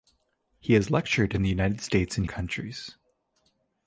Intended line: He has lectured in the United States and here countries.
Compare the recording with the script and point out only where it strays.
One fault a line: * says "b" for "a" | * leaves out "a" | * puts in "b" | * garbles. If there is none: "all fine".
* leaves out "here"